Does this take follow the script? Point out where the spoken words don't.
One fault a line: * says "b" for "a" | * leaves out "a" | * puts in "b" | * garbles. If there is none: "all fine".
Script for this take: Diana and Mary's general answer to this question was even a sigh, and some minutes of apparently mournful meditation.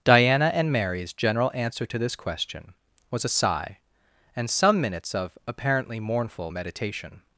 * leaves out "even"